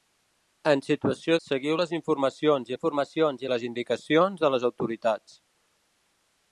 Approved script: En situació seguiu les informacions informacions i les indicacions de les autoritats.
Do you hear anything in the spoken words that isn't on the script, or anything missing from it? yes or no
no